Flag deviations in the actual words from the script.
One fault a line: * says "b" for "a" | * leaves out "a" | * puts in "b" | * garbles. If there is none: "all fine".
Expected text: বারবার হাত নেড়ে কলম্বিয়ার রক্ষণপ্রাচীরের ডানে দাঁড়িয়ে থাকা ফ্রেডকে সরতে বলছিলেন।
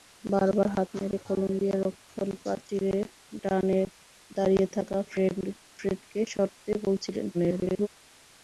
* garbles